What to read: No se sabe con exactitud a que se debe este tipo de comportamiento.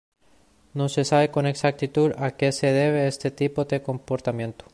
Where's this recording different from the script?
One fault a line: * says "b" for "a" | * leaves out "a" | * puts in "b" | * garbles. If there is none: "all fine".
all fine